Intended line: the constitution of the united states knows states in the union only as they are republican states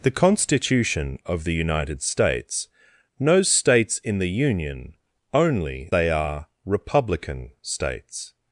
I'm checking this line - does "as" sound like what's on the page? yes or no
no